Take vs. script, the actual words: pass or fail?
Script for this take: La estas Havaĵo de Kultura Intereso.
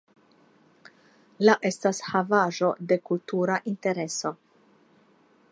pass